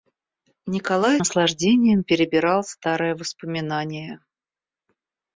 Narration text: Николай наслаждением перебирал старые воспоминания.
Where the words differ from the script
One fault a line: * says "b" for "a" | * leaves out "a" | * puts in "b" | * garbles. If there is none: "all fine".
all fine